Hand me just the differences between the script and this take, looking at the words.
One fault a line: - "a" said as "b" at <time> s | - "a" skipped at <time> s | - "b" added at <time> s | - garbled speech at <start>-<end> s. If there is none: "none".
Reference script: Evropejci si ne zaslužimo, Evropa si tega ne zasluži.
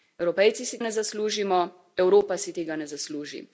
none